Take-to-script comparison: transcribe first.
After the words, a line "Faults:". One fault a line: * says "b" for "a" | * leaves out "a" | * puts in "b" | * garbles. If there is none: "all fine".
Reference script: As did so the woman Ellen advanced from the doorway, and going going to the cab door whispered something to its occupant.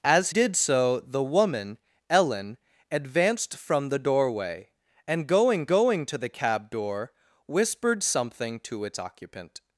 As did so the woman Ellen advanced from the doorway, and going going to the cab door whispered something to its occupant.
Faults:
all fine